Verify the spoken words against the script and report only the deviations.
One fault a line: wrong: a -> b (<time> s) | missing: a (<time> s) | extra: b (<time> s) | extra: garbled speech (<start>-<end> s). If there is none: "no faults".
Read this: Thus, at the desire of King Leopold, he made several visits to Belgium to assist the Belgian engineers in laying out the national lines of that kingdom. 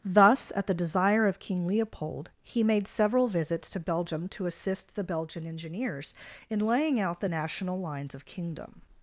missing: that (8.2 s)